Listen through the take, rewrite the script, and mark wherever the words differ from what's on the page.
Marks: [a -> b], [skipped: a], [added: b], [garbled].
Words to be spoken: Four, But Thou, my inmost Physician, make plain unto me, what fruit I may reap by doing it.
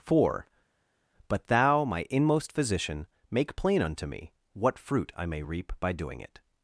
Four, But Thou, my inmost Physician, make plain unto me, what fruit I may reap by doing it.